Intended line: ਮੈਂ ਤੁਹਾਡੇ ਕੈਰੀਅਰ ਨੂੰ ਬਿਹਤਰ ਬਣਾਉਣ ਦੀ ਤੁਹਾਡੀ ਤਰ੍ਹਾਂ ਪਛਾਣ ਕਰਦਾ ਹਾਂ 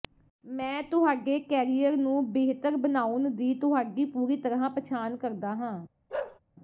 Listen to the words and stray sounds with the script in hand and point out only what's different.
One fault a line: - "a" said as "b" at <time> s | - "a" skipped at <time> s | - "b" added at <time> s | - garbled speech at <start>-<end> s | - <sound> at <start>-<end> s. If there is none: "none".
- "ਪੂਰੀ" added at 4.1 s
- bark at 6.1-6.4 s